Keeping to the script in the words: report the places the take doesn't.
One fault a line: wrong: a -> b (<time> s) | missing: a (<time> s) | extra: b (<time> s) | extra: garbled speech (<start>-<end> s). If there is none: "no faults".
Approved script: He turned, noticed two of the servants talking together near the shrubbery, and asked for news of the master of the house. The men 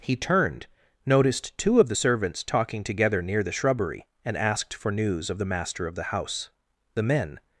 no faults